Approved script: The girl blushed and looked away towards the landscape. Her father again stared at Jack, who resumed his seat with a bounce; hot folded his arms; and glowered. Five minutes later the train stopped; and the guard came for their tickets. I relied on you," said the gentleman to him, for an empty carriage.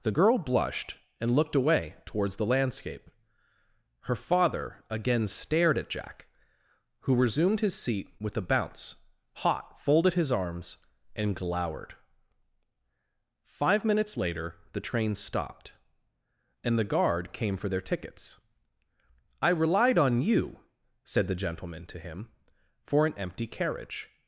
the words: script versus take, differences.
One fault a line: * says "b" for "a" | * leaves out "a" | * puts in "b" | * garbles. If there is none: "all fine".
all fine